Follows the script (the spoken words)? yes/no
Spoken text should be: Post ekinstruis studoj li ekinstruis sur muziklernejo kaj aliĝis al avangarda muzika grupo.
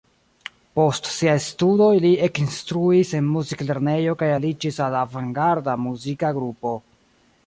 no